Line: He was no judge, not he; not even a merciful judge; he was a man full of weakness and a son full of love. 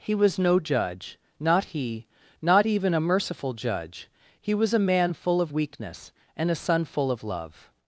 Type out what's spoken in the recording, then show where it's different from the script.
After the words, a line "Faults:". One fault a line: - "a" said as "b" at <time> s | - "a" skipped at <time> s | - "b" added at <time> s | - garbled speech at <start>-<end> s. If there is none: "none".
He was no judge, not he; not even a merciful judge; he was a man full of weakness and a son full of love.
Faults:
none